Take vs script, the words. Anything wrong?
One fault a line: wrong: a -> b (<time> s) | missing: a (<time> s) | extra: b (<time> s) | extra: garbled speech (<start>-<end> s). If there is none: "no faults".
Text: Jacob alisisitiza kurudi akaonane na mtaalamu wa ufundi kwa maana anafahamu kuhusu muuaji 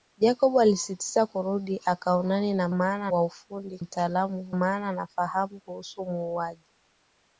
wrong: mtaalamu -> maana (2.7 s)
wrong: kwa -> mtaalamu (3.8 s)